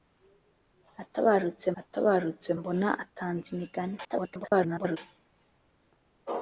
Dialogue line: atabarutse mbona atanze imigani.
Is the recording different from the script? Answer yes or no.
yes